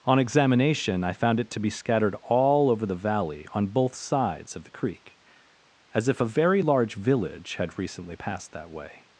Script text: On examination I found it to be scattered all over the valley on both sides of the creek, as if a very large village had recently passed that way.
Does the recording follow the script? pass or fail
pass